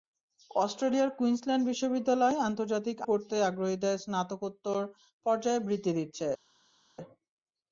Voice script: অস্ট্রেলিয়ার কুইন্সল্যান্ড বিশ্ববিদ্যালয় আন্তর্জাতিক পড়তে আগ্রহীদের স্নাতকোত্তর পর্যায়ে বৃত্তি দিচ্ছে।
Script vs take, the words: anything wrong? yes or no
no